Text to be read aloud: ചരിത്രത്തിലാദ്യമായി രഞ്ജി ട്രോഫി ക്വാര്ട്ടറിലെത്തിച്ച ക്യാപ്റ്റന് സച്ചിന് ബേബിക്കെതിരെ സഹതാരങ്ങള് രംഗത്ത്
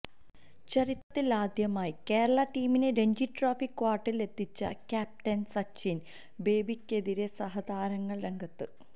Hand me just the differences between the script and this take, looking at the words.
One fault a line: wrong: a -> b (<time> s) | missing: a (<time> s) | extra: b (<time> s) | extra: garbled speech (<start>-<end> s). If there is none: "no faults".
extra: കേരള ടീമിനെ (2.1 s)